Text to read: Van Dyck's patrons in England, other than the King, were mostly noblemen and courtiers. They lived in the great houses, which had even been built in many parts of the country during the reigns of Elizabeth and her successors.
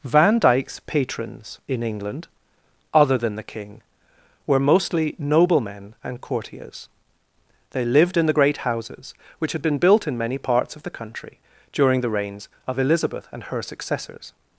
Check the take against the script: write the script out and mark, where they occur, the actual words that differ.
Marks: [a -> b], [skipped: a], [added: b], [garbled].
Van Dyck's patrons in England, other than the King, were mostly noblemen and courtiers. They lived in the great houses, which had [skipped: even] been built in many parts of the country during the reigns of Elizabeth and her successors.